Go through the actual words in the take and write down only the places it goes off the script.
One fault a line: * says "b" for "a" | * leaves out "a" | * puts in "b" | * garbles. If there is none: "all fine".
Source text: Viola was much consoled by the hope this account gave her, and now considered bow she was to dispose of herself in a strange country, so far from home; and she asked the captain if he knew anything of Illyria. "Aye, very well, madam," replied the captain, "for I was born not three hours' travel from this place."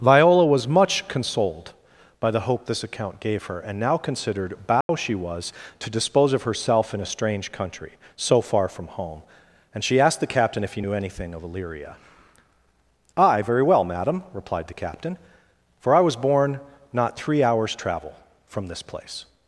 all fine